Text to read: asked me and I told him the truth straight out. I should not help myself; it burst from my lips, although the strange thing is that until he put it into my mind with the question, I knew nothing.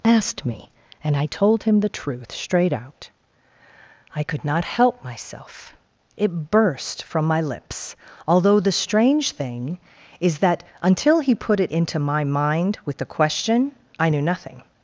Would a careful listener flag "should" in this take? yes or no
yes